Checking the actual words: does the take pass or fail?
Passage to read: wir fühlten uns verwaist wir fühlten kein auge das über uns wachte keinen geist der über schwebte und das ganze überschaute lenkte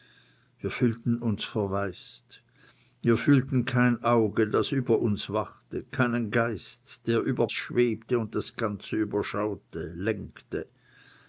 pass